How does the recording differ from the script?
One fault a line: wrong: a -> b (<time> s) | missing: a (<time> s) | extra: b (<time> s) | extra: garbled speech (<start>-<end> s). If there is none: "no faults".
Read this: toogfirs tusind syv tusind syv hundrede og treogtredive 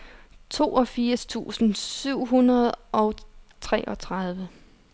missing: tusind syv (2.2 s)